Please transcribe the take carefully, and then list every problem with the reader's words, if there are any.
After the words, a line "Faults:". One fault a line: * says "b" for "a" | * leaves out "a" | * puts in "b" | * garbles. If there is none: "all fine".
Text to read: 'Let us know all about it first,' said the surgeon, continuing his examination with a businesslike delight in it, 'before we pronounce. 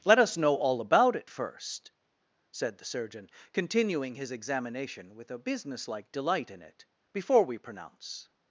'Let us know all about it first,' said the surgeon, continuing his examination with a businesslike delight in it, 'before we pronounce.
Faults:
all fine